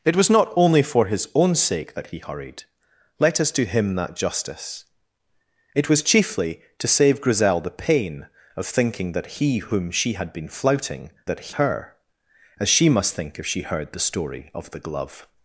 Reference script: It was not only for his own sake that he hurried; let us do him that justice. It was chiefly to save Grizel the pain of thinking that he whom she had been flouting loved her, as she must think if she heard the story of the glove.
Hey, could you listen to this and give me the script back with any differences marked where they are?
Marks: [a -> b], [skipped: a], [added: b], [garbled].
It was not only for his own sake that he hurried; let us do him that justice. It was chiefly to save Grizel the pain of thinking that he whom she had been flouting [loved -> that] her, as she must think if she heard the story of the glove.